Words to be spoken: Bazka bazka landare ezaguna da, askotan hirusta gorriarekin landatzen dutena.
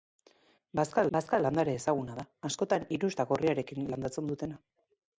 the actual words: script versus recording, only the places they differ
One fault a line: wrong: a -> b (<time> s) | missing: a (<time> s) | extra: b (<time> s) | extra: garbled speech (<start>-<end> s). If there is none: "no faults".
no faults